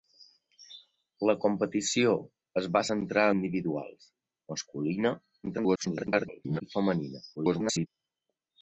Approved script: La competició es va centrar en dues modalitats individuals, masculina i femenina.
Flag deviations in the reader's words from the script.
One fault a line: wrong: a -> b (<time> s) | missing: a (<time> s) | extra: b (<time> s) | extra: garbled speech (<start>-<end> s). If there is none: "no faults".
missing: en dues modalitats (3.3 s)
extra: garbled speech (5.4-6.6 s)
extra: garbled speech (7.4-7.9 s)